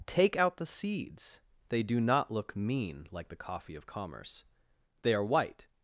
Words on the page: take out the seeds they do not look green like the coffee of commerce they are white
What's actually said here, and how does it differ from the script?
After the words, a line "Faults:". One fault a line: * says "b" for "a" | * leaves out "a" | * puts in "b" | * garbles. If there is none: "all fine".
take out the seeds they do not look mean like the coffee of commerce they are white
Faults:
* says "mean" for "green"